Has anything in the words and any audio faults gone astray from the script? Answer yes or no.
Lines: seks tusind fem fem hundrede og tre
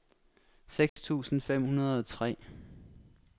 yes